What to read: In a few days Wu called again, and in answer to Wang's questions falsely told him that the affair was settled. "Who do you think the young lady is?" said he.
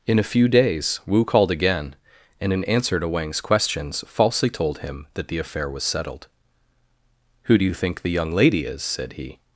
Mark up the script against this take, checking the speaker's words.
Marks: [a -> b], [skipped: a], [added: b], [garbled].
In a few days Wu called again, and in answer to Wang's questions falsely told him that the affair was settled. "Who do you think the young lady is?" said he.